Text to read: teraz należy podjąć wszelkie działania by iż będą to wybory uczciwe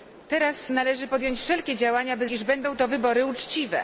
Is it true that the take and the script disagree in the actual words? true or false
false